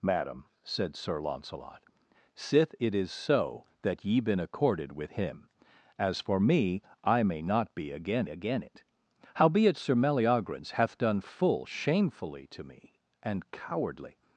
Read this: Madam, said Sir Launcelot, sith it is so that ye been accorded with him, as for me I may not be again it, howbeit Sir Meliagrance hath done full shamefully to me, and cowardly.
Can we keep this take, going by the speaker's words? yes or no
no